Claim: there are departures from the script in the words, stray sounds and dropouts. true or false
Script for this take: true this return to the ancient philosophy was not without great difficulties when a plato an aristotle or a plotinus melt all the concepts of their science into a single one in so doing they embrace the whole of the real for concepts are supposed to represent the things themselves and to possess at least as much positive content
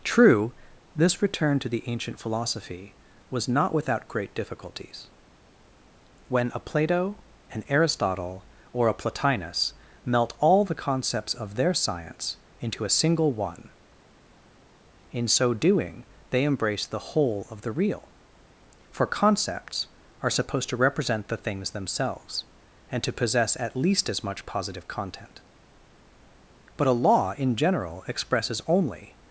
true